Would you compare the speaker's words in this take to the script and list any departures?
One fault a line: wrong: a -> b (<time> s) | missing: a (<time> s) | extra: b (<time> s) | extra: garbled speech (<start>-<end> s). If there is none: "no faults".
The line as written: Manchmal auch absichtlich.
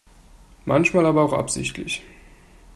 extra: aber (1.1 s)